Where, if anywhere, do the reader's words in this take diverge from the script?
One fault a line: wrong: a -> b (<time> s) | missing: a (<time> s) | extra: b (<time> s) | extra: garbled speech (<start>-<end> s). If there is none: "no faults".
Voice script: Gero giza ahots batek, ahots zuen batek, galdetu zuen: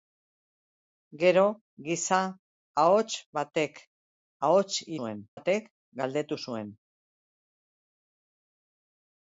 no faults